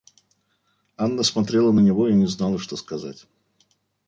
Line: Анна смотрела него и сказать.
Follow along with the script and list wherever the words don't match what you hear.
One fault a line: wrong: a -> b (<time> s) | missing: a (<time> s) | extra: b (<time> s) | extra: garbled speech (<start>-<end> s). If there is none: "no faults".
extra: на (1.7 s)
extra: не знала что (2.1 s)